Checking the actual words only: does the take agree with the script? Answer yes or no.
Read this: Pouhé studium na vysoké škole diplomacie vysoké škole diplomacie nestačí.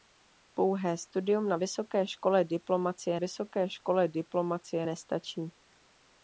yes